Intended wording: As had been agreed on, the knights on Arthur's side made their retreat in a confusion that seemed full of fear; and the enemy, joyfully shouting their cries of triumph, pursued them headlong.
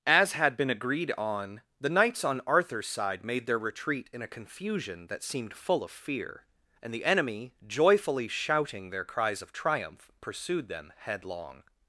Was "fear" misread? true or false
false